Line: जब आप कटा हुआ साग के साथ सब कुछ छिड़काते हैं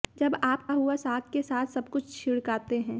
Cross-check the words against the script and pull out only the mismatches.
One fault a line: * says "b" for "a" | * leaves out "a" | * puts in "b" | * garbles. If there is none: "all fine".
* leaves out "कटा"